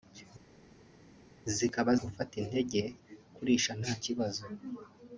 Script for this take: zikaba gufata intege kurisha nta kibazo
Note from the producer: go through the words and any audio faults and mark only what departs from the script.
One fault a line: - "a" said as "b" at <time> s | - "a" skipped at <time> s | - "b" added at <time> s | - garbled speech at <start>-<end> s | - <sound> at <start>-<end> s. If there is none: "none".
none